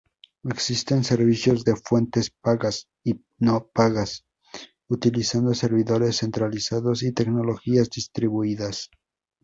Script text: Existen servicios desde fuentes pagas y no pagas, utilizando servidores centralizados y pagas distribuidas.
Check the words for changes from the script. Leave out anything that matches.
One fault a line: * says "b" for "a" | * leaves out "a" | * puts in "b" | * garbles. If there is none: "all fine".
* says "de" for "desde"
* says "tecnologías" for "pagas"